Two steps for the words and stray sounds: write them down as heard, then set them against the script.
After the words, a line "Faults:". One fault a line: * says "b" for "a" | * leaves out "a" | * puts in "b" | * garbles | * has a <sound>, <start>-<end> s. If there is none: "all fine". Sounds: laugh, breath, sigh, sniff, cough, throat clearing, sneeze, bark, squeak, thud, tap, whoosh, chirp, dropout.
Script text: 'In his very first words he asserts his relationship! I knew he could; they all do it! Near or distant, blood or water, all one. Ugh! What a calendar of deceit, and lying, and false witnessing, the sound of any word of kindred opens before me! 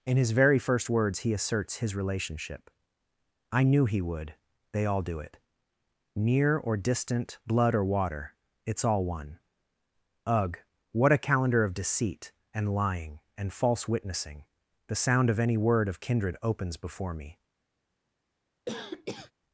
'In his very first words he asserts his relationship! I knew he would; they all do it! Near or distant, blood or water, it's all one. Ugh! What a calendar of deceit, and lying, and false witnessing, the sound of any word of kindred opens before me!
Faults:
* says "would" for "could"
* puts in "it's"
* has a cough, 18.7-19.3 s